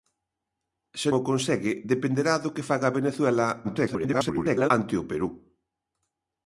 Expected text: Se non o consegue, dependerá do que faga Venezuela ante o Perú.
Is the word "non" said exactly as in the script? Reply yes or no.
no